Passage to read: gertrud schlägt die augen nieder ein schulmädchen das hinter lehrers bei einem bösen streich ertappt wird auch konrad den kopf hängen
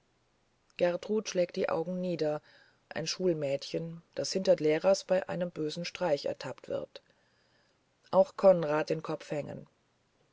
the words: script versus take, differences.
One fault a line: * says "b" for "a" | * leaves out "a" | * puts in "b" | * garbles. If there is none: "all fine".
all fine